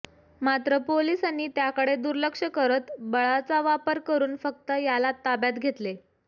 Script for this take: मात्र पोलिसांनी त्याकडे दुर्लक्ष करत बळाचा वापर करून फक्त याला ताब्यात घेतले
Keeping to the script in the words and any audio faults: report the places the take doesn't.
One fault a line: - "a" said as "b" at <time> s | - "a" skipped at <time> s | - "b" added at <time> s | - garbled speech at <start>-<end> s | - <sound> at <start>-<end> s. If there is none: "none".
none